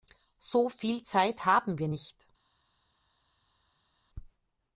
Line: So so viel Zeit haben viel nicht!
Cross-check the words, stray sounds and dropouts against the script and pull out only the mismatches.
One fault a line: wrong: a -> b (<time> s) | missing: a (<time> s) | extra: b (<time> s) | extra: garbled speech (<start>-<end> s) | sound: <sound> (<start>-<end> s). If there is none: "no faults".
missing: so (0.7 s)
wrong: viel -> wir (1.8 s)